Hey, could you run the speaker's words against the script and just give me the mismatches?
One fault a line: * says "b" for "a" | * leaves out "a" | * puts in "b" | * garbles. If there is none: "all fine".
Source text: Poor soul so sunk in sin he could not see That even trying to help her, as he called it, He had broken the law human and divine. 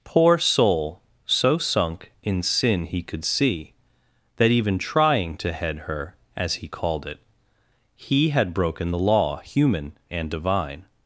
* leaves out "not"
* says "head" for "help"